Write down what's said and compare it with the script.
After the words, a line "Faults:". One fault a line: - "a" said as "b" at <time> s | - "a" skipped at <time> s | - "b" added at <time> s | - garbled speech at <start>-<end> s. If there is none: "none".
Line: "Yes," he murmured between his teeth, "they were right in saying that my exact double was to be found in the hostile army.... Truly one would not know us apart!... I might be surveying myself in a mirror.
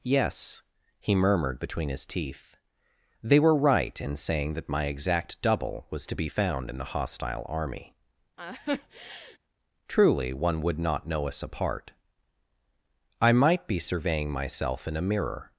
"Yes," he murmured between his teeth, "they were right in saying that my exact double was to be found in the hostile army.... Truly one would not know us apart!... I might be surveying myself in a mirror.
Faults:
none